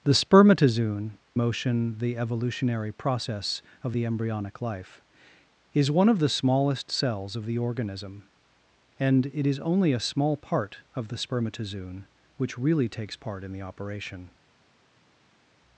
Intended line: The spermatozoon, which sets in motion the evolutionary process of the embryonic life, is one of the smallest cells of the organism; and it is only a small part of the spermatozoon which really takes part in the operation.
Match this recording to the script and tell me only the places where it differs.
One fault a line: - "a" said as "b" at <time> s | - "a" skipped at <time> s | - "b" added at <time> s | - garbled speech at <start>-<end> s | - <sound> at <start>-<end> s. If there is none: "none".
- "which sets in" skipped at 1.2 s